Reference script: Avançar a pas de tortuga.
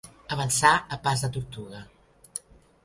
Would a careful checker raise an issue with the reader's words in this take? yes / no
no